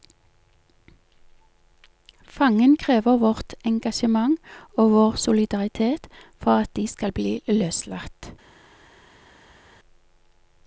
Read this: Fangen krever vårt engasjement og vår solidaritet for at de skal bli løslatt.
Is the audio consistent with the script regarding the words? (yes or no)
yes